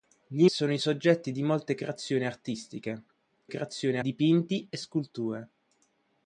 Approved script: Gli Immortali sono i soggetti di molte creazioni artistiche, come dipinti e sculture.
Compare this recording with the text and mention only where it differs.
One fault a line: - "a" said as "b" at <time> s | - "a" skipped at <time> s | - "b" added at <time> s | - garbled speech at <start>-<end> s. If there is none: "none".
- "Immortali" skipped at 0.5 s
- "come" said as "creazioni" at 3.4 s